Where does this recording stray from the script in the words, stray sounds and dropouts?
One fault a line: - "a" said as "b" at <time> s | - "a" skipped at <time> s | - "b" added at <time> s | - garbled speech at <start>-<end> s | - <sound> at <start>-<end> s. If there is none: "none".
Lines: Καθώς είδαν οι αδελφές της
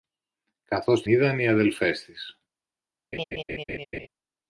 - laugh at 3.1-4.1 s